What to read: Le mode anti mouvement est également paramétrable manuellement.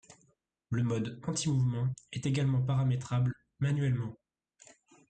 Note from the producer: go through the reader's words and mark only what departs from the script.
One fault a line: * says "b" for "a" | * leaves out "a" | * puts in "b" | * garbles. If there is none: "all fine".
all fine